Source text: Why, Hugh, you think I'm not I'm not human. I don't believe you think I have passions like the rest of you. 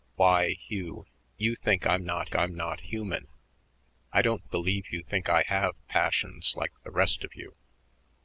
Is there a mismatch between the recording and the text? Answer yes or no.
no